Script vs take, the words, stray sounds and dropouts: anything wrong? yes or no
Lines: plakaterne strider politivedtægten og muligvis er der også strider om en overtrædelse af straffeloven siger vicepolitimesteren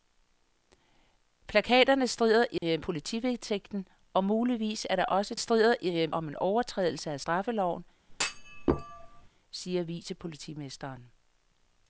yes